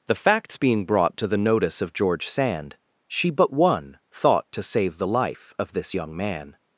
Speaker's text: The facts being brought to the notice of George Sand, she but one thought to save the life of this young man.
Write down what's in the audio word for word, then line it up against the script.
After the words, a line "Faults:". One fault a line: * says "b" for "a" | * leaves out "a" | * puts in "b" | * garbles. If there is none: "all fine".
The facts being brought to the notice of George Sand, she but one thought to save the life of this young man.
Faults:
all fine